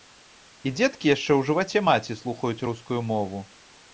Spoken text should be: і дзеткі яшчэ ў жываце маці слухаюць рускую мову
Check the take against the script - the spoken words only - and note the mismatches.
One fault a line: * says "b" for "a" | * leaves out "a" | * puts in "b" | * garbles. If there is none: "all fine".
all fine